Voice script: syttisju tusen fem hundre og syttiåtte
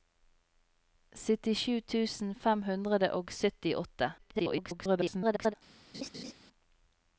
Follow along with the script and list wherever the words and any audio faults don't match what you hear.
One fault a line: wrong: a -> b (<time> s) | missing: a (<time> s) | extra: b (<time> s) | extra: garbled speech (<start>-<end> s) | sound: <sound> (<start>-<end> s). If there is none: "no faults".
extra: garbled speech (4.2-5.5 s)
sound: laugh (5.9-6.3 s)